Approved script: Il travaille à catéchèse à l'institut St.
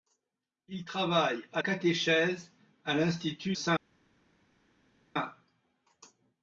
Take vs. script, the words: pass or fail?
pass